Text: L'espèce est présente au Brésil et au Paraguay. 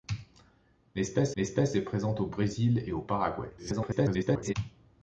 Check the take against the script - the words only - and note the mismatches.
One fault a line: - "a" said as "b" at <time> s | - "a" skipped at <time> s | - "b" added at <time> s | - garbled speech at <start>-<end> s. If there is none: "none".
- "l'espèce" added at 1.4 s
- garbled speech at 3.6-4.5 s